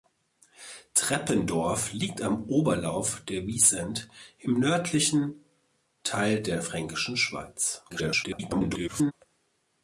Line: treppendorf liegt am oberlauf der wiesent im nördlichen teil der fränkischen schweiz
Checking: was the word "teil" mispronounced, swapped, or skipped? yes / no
no